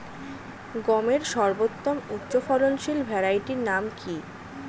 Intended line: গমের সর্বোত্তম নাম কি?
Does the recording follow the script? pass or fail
fail